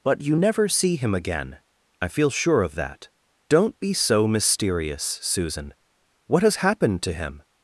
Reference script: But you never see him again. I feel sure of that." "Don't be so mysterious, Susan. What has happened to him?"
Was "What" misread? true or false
false